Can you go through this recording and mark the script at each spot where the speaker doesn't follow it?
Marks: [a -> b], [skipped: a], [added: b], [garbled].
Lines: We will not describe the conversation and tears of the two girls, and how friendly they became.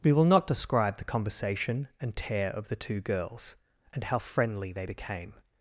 We will not describe the conversation and [tears -> tear] of the two girls, and how friendly they became.